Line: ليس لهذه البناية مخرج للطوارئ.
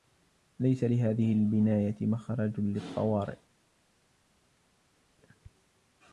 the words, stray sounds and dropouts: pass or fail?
pass